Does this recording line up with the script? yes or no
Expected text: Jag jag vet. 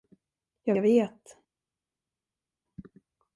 yes